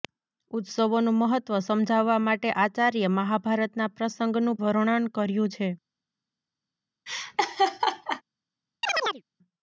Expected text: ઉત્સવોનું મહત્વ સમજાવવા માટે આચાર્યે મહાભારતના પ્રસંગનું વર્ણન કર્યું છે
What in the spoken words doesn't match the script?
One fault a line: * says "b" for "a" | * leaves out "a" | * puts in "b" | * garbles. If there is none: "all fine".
all fine